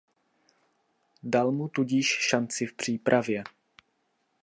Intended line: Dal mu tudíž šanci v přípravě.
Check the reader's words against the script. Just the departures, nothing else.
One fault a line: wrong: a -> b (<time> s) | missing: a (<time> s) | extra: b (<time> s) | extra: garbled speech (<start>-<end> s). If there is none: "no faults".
no faults